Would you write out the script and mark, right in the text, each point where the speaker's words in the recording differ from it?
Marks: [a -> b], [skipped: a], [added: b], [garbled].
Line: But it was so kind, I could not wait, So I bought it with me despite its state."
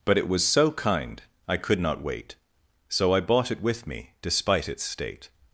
But it was so kind, I could not wait, So I bought it with me despite its state."